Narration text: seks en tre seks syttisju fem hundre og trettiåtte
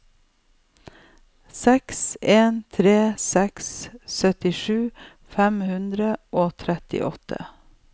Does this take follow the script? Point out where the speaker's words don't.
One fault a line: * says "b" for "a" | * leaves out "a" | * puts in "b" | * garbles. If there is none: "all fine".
all fine